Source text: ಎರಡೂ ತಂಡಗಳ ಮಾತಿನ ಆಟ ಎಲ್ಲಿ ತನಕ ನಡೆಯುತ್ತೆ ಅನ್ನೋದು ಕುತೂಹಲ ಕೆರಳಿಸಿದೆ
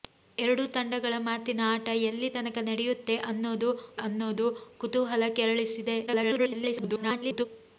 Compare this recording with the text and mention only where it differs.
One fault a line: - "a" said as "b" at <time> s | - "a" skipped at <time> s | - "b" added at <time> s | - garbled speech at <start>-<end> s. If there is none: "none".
- "ಅನ್ನೋದು" added at 4.0 s
- garbled speech at 6.1-7.5 s